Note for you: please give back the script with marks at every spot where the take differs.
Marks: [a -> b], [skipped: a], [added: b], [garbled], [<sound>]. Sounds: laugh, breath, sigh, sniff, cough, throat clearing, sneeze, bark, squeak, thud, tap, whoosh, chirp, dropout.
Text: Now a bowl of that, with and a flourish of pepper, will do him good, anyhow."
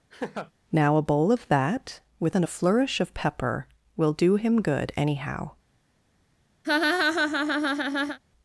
[laugh] Now a bowl of that, with and a flourish of pepper, will do him good, anyhow." [laugh]